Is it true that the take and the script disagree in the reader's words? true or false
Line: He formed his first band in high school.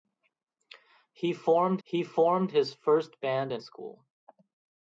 true